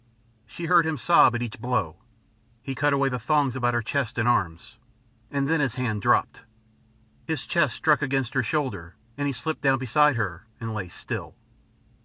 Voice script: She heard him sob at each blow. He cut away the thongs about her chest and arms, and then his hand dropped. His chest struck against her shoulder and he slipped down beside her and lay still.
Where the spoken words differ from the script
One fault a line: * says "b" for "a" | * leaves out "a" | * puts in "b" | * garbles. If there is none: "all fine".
all fine